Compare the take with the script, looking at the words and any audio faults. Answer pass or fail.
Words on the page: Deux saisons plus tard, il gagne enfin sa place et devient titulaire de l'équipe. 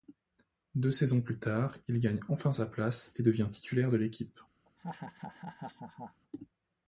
fail